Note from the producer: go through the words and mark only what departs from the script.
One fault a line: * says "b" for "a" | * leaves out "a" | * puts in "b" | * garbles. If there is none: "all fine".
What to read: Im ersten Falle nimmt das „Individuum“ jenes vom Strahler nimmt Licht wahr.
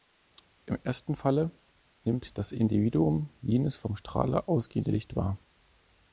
* says "ausgehende" for "nimmt"